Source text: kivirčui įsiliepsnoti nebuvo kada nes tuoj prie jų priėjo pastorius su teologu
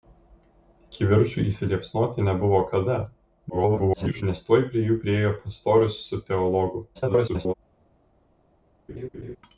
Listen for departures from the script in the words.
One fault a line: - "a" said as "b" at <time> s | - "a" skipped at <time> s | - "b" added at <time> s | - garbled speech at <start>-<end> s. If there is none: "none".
- garbled speech at 3.5-4.2 s
- garbled speech at 6.9-7.5 s